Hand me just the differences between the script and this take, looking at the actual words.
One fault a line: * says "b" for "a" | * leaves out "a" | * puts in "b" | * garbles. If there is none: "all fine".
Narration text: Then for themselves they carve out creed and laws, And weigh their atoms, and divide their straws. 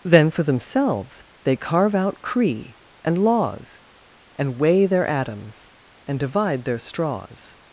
* says "cree" for "creed"